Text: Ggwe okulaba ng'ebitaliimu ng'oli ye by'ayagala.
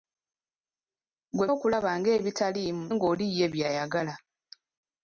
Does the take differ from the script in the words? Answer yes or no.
no